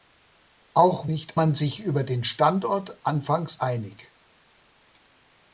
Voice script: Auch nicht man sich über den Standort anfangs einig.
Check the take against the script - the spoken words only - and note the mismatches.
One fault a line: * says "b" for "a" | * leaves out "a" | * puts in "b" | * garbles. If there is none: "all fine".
all fine